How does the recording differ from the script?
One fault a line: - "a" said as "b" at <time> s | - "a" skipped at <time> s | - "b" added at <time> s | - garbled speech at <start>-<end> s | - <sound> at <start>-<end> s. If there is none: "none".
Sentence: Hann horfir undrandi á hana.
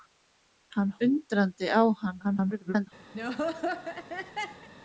- "horfir" skipped at 0.9 s
- garbled speech at 2.2-2.9 s
- laugh at 3.1-4.7 s